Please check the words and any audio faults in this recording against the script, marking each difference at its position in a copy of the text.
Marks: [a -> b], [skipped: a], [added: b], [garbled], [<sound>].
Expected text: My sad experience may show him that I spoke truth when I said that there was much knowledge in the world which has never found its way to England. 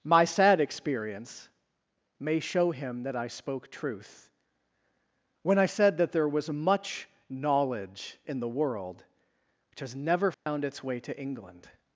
My sad experience may show him that I spoke truth when I said that there was much knowledge in the world which has never found [dropout] its way to England.